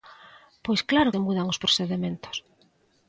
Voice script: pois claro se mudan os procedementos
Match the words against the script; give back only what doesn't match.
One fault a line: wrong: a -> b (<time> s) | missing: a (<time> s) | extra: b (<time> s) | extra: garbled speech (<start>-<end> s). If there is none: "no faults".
no faults